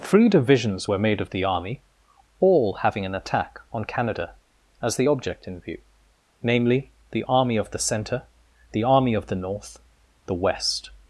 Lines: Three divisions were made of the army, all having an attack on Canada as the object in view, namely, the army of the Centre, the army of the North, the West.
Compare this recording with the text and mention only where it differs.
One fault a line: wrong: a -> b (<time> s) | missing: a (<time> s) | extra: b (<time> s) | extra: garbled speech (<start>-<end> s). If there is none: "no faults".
no faults